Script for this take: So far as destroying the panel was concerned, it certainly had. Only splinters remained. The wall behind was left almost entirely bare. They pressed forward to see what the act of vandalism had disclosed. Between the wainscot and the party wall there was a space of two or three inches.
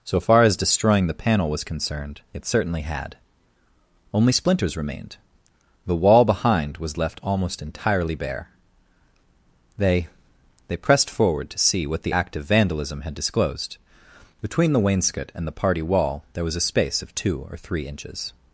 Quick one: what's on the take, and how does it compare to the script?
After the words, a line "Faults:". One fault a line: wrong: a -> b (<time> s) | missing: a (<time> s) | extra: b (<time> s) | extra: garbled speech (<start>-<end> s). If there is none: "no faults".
So far as destroying the panel was concerned, it certainly had. Only splinters remained. The wall behind was left almost entirely bare. They They pressed forward to see what the act of vandalism had disclosed. Between the wainscot and the party wall there was a space of two or three inches.
Faults:
extra: They (10.7 s)